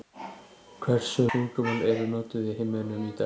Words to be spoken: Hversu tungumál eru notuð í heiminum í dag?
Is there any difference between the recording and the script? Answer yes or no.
no